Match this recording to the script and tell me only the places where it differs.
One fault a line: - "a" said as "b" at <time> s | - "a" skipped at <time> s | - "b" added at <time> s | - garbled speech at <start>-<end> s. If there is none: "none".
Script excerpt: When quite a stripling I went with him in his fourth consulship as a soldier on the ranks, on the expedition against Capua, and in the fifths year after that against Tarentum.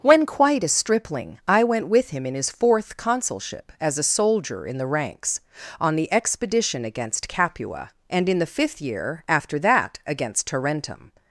- "on" said as "in" at 4.7 s
- "fifths" said as "fifth" at 8.5 s